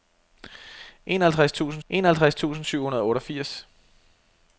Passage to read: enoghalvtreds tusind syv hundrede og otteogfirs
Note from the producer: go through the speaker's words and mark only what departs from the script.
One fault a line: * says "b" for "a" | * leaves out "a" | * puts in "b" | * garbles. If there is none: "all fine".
* puts in "enoghalvtreds tusind"